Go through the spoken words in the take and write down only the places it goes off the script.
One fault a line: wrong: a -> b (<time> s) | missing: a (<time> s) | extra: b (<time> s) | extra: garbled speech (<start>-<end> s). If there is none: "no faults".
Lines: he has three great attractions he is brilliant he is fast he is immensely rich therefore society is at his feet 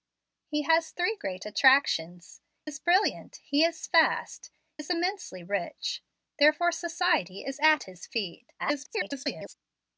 missing: he (2.4 s)
missing: he (4.5 s)
extra: garbled speech (8.6-9.5 s)